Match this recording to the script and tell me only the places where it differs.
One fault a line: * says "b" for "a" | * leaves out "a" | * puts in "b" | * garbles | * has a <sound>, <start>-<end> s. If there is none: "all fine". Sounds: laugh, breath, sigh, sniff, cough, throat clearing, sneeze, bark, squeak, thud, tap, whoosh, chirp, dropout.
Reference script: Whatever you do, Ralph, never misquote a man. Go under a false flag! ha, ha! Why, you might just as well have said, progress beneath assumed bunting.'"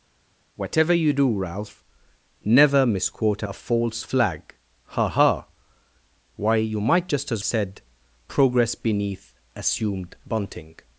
* leaves out "man Go under"
* leaves out "well have"